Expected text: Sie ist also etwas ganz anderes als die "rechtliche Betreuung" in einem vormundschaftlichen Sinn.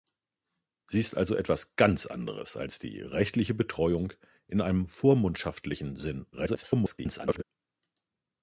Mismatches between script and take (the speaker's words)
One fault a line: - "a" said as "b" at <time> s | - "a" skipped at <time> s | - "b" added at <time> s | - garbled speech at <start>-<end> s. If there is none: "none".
- garbled speech at 6.3-7.4 s